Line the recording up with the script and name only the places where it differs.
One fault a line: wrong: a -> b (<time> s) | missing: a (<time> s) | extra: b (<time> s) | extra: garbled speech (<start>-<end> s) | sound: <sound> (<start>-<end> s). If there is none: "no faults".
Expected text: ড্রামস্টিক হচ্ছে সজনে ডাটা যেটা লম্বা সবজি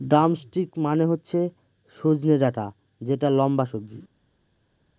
extra: মানে (0.8 s)